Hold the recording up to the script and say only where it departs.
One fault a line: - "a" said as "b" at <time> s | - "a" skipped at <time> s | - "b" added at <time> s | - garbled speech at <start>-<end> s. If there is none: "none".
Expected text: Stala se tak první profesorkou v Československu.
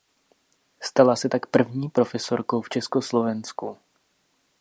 none